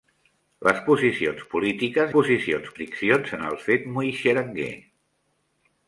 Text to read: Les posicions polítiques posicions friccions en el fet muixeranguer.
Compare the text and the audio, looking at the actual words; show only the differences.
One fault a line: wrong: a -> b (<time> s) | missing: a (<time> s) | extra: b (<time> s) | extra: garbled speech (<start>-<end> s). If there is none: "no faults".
no faults